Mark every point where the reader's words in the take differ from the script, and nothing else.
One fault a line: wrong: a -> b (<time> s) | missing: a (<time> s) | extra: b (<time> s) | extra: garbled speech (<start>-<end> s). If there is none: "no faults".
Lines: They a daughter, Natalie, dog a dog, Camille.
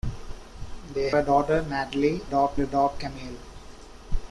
no faults